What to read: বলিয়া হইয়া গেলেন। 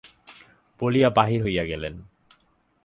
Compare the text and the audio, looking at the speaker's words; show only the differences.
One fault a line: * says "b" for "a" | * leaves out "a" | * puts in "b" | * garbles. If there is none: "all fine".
* puts in "বাহির"